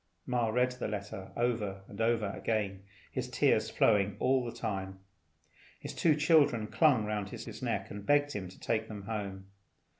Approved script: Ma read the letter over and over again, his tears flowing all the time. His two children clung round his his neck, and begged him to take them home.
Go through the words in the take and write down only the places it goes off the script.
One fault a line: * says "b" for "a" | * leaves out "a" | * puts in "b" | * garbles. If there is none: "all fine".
all fine